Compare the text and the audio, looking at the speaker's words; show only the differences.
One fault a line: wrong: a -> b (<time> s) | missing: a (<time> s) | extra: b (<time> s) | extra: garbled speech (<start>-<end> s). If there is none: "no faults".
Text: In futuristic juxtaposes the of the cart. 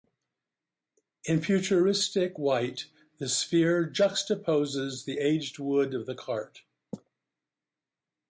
extra: white the sphere (2.4 s)
extra: aged wood (5.2 s)